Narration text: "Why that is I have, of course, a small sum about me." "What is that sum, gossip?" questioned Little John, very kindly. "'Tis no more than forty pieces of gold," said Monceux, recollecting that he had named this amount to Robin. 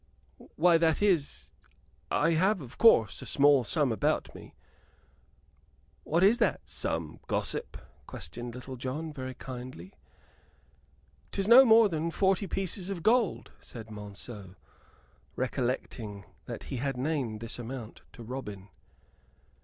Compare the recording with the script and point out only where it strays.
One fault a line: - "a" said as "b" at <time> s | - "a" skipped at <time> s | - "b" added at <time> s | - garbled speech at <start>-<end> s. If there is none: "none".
none